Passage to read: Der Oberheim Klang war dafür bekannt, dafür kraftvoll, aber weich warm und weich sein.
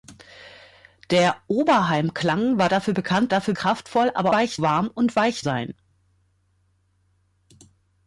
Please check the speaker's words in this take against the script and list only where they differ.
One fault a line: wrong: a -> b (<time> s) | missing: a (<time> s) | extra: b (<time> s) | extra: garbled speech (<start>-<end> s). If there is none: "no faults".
no faults